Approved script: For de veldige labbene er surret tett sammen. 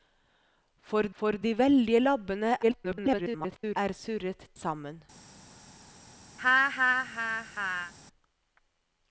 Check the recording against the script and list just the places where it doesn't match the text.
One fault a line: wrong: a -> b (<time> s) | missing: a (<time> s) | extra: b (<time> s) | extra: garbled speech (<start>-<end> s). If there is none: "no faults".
extra: for (1.2 s)
extra: garbled speech (2.6-3.8 s)
missing: tett (4.5 s)